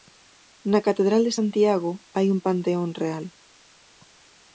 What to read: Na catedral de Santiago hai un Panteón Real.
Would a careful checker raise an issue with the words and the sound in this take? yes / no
no